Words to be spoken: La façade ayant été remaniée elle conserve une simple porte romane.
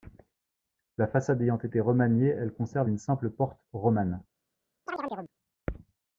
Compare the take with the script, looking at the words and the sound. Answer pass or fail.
fail